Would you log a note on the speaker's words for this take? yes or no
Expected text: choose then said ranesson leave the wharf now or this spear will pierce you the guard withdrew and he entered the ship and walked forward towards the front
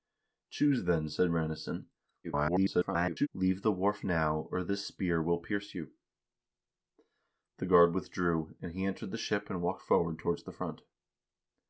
yes